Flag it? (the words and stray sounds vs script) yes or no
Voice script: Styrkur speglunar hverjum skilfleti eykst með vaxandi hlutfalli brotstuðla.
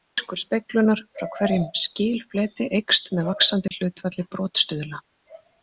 yes